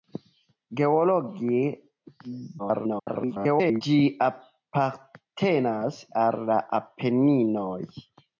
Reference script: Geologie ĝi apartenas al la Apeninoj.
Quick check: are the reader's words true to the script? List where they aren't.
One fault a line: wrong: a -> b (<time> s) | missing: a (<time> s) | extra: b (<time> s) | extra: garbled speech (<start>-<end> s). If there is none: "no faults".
extra: garbled speech (2.6-3.8 s)